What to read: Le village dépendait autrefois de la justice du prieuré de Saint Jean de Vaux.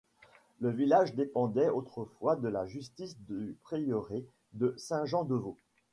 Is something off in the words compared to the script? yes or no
no